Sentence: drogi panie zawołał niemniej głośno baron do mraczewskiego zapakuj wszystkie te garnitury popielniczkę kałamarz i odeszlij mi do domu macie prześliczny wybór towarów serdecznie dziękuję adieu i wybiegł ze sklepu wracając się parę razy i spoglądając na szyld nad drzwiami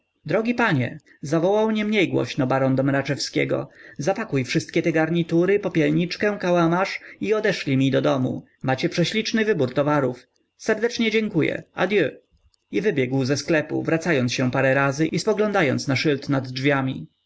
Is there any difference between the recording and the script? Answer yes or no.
no